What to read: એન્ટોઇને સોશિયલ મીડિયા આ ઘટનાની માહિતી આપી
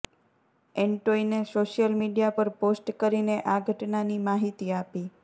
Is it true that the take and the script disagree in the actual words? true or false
true